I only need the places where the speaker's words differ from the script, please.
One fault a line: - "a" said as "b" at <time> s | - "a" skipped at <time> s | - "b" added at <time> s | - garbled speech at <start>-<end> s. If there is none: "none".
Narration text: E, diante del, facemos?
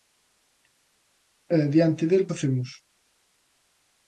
none